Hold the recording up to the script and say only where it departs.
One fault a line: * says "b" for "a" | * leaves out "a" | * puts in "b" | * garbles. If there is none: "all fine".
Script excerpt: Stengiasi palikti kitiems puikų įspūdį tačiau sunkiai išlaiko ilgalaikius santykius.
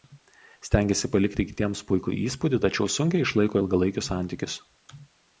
all fine